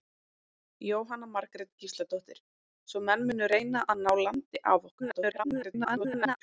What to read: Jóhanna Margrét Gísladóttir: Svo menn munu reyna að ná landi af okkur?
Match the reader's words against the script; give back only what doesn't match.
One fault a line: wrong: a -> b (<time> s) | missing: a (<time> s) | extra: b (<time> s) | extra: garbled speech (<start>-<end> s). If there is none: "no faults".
extra: garbled speech (5.0-6.4 s)